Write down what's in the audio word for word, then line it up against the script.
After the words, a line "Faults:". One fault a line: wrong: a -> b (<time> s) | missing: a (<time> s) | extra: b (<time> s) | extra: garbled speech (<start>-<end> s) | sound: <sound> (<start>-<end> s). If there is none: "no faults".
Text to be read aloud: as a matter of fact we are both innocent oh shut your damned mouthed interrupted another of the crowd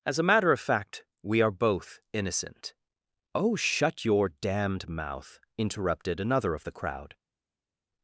as a matter of fact we are both innocent oh shut your damned mouth interrupted another of the crowd
Faults:
wrong: mouthed -> mouth (4.9 s)